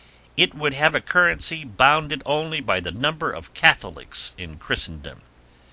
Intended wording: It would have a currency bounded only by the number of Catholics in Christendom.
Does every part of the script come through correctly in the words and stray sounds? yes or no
yes